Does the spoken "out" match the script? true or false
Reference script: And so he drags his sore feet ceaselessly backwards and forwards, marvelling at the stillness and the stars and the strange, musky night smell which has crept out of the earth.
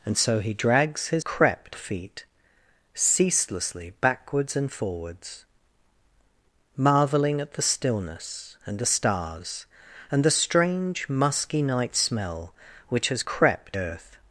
false